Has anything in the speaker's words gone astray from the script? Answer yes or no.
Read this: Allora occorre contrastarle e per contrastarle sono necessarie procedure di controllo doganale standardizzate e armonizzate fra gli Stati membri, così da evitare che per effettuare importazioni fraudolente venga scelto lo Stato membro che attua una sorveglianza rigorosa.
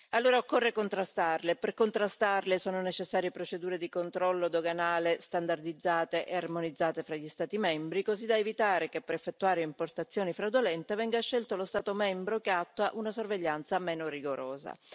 yes